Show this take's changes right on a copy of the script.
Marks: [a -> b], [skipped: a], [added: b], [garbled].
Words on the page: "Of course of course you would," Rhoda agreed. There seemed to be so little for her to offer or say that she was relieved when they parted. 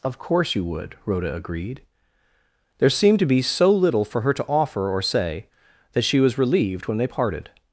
"Of course [skipped: of course] you would," Rhoda agreed. There seemed to be so little for her to offer or say that she was relieved when they parted.